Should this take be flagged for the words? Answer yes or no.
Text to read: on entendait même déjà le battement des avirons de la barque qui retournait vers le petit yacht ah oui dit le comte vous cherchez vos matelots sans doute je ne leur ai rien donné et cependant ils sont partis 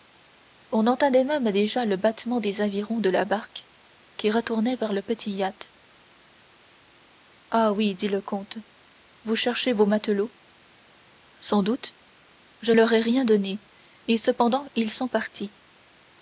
yes